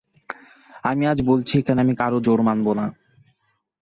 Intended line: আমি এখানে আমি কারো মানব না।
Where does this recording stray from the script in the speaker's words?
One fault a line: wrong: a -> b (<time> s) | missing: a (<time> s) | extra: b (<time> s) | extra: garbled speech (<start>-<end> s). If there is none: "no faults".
extra: আজ বলছি (1.1 s)
extra: জোর (2.2 s)